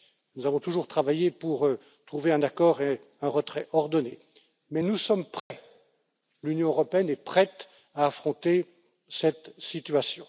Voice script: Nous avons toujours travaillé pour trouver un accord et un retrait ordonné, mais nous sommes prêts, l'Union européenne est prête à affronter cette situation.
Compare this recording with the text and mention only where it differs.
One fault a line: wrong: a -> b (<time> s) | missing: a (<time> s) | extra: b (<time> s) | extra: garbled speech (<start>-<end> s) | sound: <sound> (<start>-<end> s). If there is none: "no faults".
sound: dropout (5.4-5.5 s)